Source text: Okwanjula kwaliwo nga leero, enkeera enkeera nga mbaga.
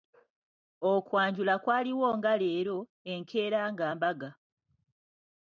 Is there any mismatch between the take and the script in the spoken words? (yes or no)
yes